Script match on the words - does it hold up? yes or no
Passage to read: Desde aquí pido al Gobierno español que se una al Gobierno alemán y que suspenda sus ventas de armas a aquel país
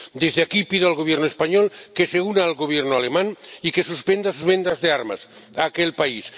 yes